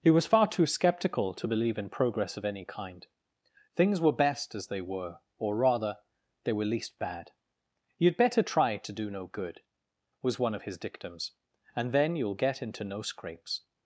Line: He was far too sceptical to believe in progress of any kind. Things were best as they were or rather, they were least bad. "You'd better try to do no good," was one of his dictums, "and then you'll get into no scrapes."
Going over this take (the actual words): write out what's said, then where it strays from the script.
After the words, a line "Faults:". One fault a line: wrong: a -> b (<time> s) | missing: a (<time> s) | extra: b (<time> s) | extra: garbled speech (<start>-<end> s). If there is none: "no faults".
He was far too sceptical to believe in progress of any kind. Things were best as they were or rather, they were least bad. "You'd better try to do no good," was one of his dictums, "and then you'll get into no scrapes."
Faults:
no faults